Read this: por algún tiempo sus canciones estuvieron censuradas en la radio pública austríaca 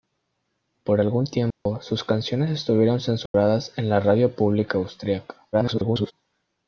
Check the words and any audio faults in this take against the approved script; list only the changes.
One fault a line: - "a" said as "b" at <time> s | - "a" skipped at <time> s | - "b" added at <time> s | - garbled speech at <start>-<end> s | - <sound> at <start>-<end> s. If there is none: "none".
- dropout at 1.5-1.7 s
- dropout at 3.3-3.3 s
- garbled speech at 5.5-6.1 s